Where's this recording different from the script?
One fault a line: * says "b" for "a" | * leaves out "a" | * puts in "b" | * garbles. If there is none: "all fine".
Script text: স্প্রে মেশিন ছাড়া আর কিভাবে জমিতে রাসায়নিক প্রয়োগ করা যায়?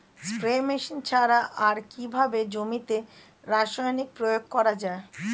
all fine